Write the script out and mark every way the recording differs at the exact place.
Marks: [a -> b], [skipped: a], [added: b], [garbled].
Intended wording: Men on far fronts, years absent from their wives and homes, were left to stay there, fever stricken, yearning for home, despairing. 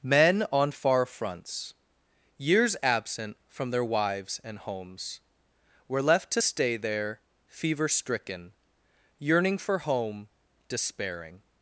Men on far fronts, years absent from their wives and homes, were left to stay there, fever stricken, yearning for home, despairing.